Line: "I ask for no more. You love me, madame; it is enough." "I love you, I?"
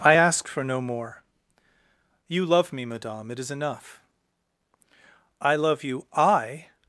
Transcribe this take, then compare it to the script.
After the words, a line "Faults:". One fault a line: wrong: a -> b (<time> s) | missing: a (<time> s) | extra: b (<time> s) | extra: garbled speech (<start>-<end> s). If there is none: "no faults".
"I ask for no more. You love me, madame; it is enough." "I love you, I?"
Faults:
no faults